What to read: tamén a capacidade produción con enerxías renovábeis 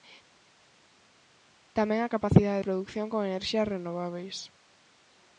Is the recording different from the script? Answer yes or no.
no